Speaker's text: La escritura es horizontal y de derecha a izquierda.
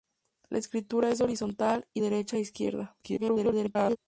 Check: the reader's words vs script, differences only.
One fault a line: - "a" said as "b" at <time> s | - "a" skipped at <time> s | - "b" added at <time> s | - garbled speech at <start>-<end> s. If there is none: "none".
- "de" skipped at 2.0 s
- garbled speech at 3.0-4.0 s